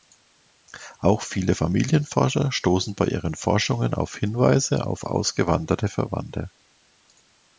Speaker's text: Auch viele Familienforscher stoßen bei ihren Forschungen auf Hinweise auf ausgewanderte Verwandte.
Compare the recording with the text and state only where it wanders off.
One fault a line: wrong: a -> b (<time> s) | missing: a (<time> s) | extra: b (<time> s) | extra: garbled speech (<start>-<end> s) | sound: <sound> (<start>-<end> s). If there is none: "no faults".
no faults